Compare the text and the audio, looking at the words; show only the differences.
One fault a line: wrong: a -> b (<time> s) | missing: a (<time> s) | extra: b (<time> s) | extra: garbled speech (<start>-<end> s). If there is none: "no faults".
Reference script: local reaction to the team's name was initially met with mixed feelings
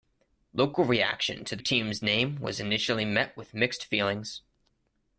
no faults